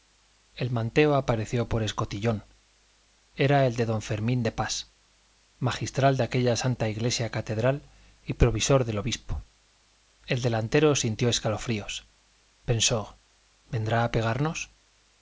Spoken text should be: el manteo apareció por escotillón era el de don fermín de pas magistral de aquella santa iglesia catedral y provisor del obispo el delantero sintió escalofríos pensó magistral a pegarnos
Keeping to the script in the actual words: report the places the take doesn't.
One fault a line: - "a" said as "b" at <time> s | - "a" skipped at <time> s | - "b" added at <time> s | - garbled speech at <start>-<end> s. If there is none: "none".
- "magistral" said as "vendrá" at 13.7 s